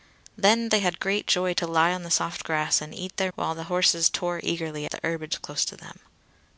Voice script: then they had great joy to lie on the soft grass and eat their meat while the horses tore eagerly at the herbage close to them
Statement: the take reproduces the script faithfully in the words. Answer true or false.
false